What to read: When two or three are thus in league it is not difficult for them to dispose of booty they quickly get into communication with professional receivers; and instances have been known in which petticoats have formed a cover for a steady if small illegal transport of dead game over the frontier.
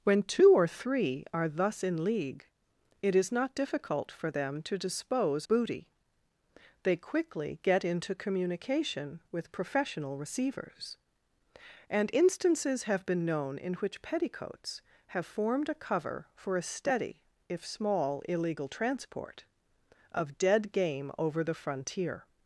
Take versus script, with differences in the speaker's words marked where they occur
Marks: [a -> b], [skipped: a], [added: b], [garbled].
When two or three are thus in league it is not difficult for them to dispose [skipped: of] booty they quickly get into communication with professional receivers; and instances have been known in which petticoats have formed a cover for a steady if small illegal transport of dead game over the frontier.